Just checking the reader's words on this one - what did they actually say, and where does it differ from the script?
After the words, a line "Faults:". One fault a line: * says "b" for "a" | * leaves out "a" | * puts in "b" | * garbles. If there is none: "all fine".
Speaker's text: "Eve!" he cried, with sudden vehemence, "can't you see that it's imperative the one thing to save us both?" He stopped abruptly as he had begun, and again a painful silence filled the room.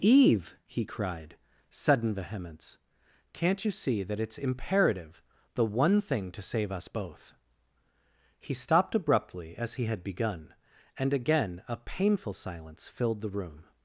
"Eve!" he cried, sudden vehemence, "can't you see that it's imperative the one thing to save us both?" He stopped abruptly as he had begun, and again a painful silence filled the room.
Faults:
* leaves out "with"